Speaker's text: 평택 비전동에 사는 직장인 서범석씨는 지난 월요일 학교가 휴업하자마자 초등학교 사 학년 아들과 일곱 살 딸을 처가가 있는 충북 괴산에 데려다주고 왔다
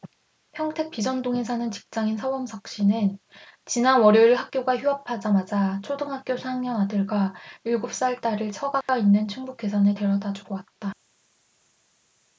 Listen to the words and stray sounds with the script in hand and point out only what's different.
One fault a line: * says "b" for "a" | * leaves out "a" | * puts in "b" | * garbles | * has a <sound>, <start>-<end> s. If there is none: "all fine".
* has a dropout, 8.8-8.9 s